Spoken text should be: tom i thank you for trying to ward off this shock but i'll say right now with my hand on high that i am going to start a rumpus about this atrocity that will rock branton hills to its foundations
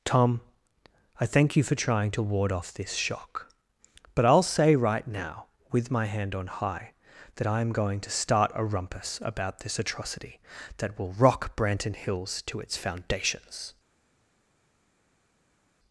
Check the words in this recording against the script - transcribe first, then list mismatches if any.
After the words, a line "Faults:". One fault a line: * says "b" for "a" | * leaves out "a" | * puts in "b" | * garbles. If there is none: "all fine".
tom i thank you for trying to ward off this shock but i'll say right now with my hand on high that i am going to start a rumpus about this atrocity that will rock branton hills to its foundations
Faults:
all fine